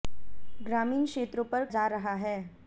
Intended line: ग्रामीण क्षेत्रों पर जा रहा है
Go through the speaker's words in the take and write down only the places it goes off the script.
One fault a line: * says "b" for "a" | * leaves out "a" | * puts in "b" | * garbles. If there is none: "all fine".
all fine